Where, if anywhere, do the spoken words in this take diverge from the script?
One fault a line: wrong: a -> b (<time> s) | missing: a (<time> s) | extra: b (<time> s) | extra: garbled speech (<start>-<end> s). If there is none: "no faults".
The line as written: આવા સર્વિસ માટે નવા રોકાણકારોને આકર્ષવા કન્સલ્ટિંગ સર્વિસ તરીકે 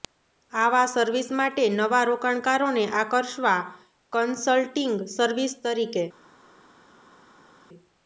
no faults